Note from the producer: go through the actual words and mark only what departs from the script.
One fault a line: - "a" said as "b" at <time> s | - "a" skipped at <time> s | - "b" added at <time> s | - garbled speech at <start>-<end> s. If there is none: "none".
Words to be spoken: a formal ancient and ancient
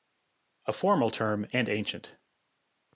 - "ancient" said as "term" at 1.1 s